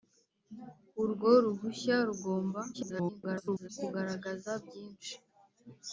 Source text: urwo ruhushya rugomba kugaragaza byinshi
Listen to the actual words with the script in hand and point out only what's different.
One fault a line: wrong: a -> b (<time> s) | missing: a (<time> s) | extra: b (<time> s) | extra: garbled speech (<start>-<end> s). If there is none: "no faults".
extra: garbled speech (2.7-3.7 s)